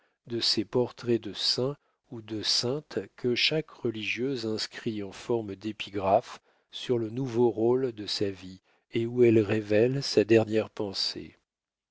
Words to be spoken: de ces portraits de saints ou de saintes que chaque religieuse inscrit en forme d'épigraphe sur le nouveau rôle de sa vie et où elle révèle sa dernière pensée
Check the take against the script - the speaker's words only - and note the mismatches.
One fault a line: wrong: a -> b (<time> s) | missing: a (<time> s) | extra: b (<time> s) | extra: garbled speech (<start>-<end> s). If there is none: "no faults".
no faults